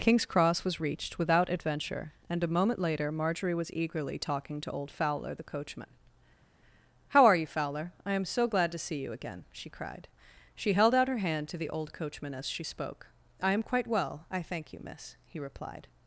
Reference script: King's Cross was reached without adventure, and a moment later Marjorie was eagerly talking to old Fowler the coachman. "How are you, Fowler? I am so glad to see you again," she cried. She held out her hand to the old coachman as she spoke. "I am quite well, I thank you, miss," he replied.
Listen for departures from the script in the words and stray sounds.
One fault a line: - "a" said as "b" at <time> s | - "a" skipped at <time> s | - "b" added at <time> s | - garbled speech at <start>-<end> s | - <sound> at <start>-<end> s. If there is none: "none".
none